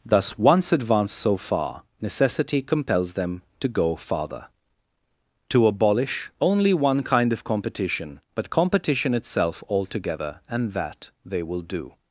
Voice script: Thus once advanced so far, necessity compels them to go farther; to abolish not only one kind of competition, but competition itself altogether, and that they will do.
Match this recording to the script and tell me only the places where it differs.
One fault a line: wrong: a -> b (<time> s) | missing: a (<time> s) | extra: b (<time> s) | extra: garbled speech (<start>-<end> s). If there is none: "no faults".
missing: not (6.3 s)